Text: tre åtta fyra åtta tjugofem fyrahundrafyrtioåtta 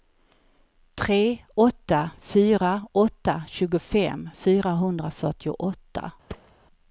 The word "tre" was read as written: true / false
true